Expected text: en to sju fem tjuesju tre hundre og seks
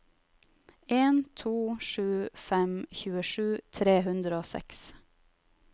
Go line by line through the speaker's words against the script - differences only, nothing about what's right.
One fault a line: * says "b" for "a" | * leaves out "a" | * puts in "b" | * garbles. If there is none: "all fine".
all fine